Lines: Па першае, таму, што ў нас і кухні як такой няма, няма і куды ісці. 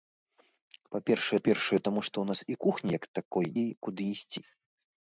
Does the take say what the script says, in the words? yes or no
no